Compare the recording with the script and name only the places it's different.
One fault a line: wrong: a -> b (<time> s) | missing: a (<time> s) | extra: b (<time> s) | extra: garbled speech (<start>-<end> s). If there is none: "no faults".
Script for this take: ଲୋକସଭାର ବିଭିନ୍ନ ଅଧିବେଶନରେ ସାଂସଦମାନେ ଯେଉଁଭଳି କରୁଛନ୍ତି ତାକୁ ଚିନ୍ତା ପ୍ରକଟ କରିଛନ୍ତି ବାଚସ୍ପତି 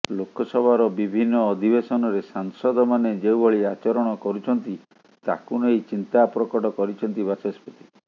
extra: ଆଚରଣ (3.8 s)
extra: ନେଇ (5.6 s)